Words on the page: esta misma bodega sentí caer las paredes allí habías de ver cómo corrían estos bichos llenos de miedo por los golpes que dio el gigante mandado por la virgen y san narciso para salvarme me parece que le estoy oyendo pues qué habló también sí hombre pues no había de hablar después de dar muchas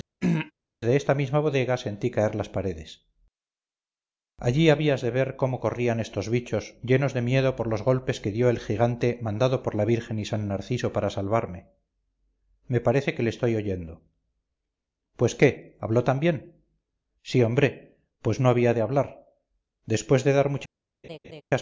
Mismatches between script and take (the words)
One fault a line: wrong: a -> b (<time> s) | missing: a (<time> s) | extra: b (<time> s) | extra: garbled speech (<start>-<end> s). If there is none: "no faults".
no faults